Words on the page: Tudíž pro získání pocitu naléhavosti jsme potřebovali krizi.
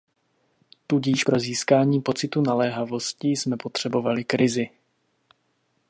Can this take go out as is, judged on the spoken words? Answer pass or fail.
pass